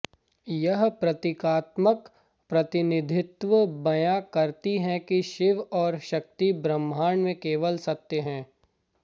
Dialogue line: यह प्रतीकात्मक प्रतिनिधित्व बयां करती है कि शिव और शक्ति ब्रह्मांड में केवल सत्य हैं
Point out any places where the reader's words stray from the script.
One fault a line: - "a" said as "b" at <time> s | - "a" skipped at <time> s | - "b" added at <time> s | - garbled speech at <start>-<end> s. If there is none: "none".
none